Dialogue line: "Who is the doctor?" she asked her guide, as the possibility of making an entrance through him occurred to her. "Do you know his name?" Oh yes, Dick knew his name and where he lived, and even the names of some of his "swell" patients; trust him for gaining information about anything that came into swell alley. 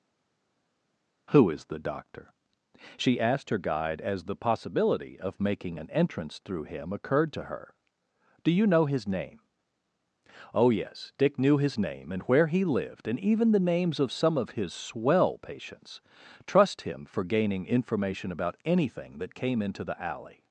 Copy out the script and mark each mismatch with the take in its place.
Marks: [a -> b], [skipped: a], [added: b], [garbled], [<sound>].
"Who is the doctor?" she asked her guide, as the possibility of making an entrance through him occurred to her. "Do you know his name?" Oh yes, Dick knew his name and where he lived, and even the names of some of his "swell" patients; trust him for gaining information about anything that came into [swell -> the] alley.